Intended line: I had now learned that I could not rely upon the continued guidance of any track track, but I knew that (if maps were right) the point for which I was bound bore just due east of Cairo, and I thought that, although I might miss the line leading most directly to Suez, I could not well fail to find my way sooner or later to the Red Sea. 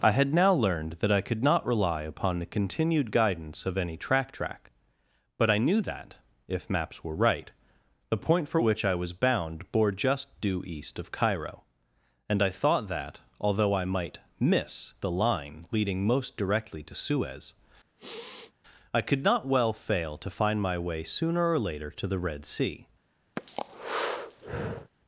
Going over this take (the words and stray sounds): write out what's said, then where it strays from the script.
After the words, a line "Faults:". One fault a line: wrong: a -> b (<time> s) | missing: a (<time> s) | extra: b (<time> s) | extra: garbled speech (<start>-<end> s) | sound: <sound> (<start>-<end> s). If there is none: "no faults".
I had now learned that I could not rely upon the continued guidance of any track track, but I knew that (if maps were right) the point for which I was bound bore just due east of Cairo, and I thought that, although I might miss the line leading most directly to Suez, I could not well fail to find my way sooner or later to the Red Sea.
Faults:
sound: sniff (18.0-18.5 s)
sound: breath (23.4-24.9 s)